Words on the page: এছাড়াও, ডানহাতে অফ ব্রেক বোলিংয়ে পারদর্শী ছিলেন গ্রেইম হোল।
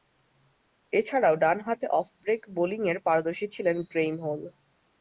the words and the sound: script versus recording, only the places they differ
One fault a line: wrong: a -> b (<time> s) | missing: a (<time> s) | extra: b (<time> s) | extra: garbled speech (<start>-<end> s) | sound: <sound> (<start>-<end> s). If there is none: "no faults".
no faults